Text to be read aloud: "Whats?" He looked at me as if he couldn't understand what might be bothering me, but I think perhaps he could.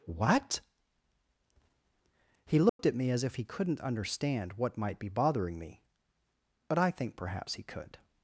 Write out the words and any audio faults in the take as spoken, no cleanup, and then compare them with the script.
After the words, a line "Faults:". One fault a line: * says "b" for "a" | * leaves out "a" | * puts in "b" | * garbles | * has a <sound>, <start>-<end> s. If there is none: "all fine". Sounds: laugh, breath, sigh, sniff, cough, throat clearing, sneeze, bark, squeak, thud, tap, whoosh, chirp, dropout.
"What?" He looked at me as if he couldn't understand what might be bothering me, but I think perhaps he could.
Faults:
* says "What" for "Whats"
* has a dropout, 2.7-2.8 s